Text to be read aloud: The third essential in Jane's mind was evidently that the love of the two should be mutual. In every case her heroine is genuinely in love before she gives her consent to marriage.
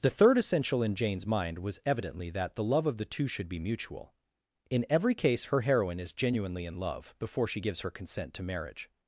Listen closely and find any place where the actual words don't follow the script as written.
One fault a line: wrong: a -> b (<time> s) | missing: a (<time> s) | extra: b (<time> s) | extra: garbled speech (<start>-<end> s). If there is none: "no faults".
no faults